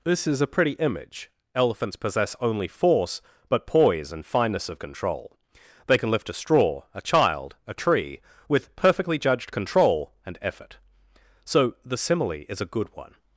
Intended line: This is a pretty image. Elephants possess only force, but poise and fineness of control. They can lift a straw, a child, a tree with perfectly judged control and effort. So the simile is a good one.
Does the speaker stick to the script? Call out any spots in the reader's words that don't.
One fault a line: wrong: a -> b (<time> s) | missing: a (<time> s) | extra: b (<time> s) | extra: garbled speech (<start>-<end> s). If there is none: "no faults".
no faults